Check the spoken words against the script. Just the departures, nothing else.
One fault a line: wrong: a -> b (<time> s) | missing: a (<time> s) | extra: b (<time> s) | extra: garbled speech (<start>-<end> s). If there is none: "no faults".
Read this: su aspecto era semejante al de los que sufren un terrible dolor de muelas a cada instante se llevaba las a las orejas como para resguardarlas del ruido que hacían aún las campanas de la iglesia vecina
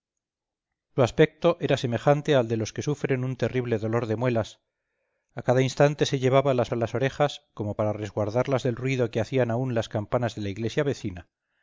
no faults